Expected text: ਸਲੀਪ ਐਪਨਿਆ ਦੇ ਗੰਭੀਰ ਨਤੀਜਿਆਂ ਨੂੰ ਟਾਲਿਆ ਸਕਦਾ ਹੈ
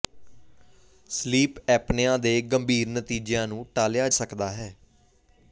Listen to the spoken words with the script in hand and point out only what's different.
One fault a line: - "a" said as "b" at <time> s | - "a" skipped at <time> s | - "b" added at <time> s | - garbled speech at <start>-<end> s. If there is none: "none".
none